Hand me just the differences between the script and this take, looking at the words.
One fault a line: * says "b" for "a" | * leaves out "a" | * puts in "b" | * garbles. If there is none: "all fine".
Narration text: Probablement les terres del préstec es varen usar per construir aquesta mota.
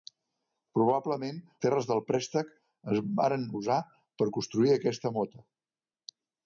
* leaves out "les"